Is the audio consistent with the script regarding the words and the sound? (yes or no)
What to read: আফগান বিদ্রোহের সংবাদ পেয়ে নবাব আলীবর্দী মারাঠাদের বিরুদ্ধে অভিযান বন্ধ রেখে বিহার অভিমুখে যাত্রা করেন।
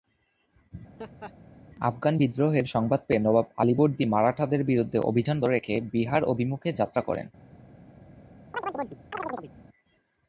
no